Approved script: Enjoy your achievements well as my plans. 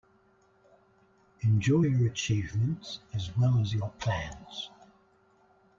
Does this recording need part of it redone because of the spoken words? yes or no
yes